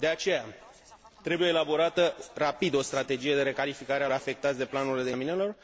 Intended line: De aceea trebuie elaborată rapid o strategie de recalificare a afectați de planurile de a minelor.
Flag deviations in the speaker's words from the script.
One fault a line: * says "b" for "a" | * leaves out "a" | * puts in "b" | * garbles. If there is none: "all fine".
all fine